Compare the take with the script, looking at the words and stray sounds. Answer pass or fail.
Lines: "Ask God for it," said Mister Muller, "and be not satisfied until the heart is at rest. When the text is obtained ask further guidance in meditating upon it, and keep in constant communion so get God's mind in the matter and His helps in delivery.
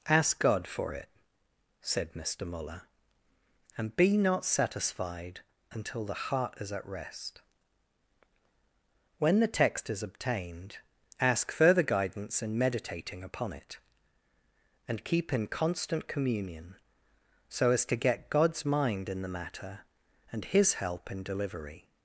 fail